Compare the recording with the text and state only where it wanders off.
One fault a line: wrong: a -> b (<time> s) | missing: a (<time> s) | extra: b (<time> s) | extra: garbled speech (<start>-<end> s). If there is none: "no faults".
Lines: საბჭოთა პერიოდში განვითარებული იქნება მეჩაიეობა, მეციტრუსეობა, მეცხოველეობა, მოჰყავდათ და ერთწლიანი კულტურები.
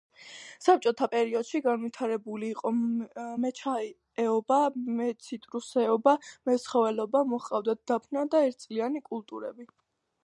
wrong: იქნება -> იყო (2.6 s)
extra: დაფნა (7.9 s)